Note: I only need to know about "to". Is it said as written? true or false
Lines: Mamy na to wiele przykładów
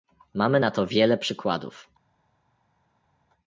true